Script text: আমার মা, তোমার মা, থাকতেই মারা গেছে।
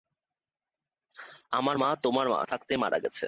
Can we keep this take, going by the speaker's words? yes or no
yes